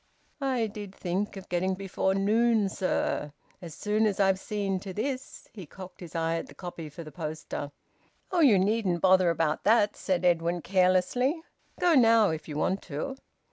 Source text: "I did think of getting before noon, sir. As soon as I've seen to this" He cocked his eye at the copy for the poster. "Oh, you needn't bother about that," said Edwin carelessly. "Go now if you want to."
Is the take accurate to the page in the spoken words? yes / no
yes